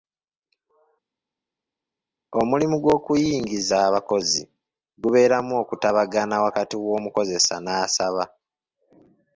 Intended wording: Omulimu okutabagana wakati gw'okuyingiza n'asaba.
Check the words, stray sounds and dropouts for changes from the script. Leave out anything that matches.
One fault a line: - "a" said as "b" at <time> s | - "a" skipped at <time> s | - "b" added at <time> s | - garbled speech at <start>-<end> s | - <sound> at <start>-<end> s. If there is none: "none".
- "gw'okuyingiza abakozi gubeeramu" added at 2.8 s
- "gw'okuyingiza" said as "w'omukozesa" at 6.8 s